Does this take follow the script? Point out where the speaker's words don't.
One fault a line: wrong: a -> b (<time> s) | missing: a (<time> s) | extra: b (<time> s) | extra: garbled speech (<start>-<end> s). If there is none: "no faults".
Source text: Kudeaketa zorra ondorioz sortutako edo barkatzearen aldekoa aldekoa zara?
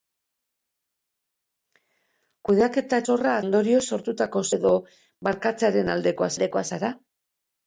no faults